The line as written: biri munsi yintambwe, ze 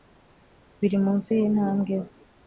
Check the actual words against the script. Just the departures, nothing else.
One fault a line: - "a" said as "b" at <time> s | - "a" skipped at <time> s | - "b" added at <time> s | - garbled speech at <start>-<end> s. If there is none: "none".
none